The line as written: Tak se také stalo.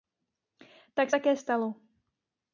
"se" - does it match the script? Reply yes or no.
no